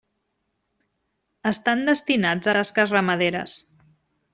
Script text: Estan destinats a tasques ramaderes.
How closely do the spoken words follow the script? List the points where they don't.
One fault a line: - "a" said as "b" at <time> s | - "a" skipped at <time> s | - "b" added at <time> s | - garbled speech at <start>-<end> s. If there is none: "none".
none